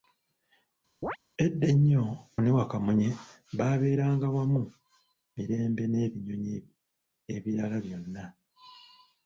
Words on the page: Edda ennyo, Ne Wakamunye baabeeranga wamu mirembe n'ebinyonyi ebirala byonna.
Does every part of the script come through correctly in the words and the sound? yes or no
no